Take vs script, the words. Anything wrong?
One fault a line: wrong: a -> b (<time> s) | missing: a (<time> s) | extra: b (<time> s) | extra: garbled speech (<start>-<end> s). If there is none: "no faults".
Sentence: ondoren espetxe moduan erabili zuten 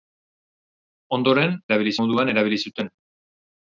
wrong: espetxe -> erabili (1.7 s)